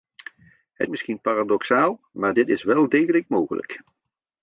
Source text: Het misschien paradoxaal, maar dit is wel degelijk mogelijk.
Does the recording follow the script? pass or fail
pass